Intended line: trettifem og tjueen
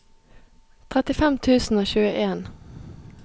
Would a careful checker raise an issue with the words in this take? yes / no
yes